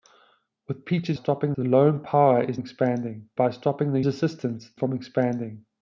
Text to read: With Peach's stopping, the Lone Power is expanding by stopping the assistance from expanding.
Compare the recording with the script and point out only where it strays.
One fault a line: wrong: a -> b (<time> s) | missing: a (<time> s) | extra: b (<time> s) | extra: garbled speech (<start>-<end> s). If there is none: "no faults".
no faults